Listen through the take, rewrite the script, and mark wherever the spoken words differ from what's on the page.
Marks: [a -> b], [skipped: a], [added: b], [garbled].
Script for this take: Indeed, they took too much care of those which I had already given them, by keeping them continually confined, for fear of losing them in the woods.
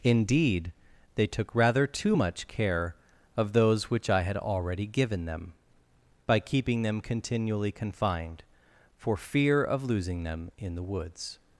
Indeed, they took [added: rather] too much care of those which I had already given them, by keeping them continually confined, for fear of losing them in the woods.